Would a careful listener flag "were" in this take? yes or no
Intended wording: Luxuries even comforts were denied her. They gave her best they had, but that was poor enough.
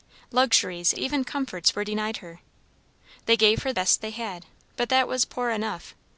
no